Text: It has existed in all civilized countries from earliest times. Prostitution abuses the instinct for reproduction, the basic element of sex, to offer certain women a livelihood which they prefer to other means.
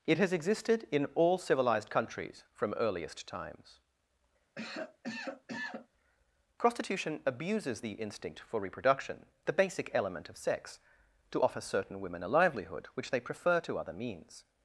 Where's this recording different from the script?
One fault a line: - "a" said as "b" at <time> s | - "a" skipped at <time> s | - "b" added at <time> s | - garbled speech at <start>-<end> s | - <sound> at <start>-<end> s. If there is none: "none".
- cough at 4.5-5.9 s